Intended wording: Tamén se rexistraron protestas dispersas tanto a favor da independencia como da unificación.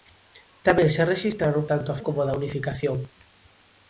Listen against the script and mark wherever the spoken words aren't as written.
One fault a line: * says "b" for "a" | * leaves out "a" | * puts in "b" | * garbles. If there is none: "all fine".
* leaves out "protestas dispersas"
* leaves out "favor da independencia"